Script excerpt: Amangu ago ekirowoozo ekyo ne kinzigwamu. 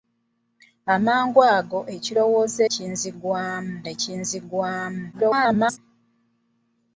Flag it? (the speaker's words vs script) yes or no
yes